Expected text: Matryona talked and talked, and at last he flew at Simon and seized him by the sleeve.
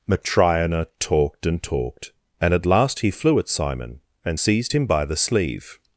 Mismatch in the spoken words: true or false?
false